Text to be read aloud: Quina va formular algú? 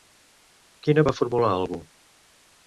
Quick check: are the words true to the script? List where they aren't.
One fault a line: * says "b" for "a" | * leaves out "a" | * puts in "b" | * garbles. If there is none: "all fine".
all fine